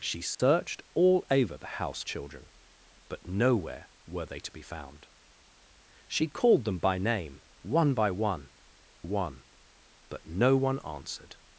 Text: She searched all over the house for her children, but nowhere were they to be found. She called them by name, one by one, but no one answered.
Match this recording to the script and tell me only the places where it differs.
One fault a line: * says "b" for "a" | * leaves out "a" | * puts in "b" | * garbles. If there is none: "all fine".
* leaves out "for her"
* puts in "one"